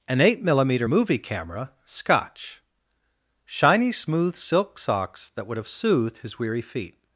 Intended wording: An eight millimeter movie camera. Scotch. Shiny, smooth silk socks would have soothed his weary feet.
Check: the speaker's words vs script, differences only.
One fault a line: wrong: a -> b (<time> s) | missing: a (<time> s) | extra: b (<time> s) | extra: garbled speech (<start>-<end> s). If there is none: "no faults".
extra: that (5.3 s)